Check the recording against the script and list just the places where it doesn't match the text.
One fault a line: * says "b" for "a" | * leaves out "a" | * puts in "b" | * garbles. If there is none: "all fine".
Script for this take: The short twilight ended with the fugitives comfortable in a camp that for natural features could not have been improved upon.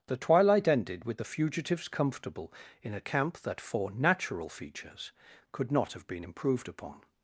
* leaves out "short"